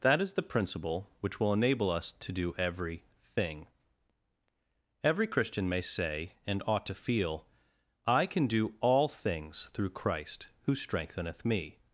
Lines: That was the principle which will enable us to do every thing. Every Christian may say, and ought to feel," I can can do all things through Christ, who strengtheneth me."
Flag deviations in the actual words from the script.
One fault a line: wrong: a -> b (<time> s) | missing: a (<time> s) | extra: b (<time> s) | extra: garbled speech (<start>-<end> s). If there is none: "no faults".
wrong: was -> is (0.2 s)
missing: can (8.5 s)